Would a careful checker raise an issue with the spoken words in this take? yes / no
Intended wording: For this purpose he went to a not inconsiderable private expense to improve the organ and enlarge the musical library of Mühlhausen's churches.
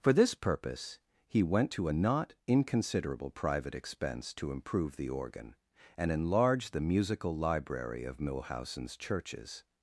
no